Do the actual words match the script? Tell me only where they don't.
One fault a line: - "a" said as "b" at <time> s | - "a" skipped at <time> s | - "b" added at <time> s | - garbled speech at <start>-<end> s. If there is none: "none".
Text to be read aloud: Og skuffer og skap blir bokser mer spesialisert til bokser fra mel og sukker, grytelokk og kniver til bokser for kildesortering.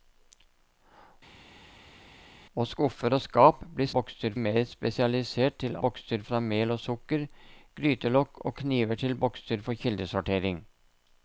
none